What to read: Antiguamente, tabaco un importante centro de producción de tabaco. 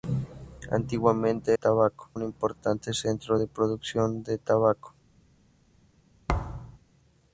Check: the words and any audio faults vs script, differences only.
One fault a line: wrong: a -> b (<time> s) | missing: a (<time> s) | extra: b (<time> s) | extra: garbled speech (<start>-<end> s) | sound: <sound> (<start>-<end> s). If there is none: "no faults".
sound: thud (6.3-6.8 s)